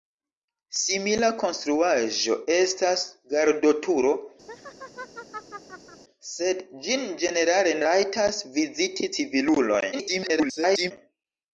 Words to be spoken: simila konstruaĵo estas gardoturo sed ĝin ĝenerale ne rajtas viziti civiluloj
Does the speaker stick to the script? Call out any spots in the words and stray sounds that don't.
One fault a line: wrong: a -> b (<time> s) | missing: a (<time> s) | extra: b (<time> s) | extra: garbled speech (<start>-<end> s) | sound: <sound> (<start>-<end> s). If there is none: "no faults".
sound: laugh (4.5-6.0 s)
missing: ne (7.8 s)
extra: garbled speech (9.9-10.9 s)